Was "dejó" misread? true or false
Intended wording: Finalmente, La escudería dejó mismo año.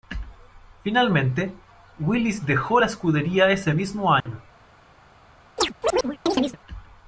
true